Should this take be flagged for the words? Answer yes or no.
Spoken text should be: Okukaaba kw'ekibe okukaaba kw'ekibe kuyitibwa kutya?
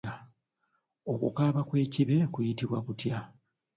yes